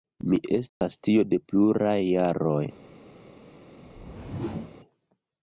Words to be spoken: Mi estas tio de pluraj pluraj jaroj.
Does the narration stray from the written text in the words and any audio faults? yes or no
yes